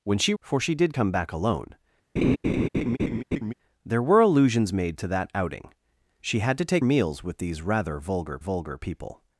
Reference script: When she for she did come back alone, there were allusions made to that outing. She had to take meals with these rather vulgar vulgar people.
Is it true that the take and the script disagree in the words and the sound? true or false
true